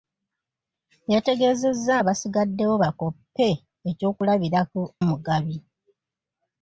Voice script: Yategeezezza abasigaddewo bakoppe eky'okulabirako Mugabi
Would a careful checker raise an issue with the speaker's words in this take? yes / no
no